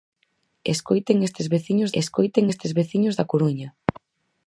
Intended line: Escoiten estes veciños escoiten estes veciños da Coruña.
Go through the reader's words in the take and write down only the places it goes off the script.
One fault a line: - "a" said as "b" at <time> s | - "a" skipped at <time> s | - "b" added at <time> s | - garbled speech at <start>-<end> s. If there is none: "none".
none